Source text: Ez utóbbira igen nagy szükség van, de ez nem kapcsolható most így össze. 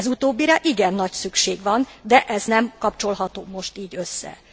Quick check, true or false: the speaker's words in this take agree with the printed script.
true